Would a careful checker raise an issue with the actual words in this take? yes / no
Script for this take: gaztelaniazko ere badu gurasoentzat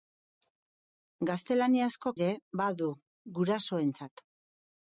no